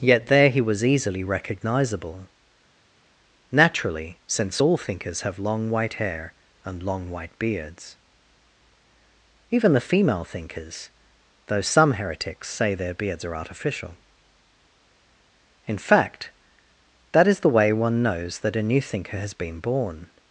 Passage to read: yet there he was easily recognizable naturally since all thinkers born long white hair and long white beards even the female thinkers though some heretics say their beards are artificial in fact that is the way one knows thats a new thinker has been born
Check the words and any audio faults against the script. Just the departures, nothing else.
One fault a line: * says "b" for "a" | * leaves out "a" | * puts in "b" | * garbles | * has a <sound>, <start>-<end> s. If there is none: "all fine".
* says "have" for "born"
* says "that" for "thats"